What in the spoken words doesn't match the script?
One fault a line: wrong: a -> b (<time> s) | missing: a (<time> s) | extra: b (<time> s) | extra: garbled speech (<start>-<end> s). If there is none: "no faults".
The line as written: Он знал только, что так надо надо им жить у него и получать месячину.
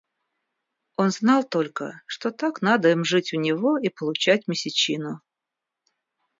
missing: надо (2.9 s)